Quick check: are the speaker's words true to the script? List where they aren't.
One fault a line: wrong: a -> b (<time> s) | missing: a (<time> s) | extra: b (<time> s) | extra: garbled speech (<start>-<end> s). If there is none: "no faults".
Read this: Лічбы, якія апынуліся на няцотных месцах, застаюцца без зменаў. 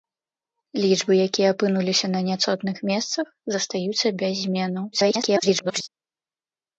extra: garbled speech (4.9-5.9 s)